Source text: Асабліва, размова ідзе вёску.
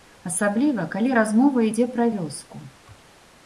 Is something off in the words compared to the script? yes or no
yes